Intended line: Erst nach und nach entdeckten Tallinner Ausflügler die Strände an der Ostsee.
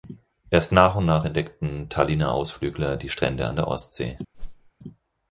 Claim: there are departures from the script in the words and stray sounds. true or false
true